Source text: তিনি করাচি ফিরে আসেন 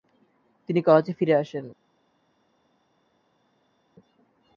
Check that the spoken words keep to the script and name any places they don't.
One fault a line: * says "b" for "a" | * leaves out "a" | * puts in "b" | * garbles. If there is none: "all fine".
all fine